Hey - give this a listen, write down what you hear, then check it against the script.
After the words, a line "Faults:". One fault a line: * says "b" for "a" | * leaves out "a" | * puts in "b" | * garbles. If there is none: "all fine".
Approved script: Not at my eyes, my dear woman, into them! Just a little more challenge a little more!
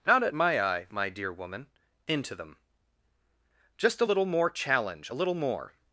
Not at my eye, my dear woman, into them! Just a little more challenge a little more!
Faults:
* says "eye" for "eyes"